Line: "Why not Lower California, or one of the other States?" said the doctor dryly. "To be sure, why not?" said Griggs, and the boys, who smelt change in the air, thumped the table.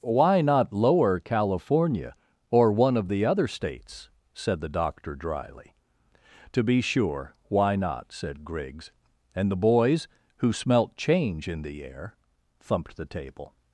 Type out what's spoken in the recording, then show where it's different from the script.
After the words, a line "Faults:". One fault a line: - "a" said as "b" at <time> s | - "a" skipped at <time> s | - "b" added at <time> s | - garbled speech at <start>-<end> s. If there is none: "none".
"Why not Lower California, or one of the other States?" said the doctor dryly. "To be sure, why not?" said Griggs, and the boys, who smelt change in the air, thumped the table.
Faults:
none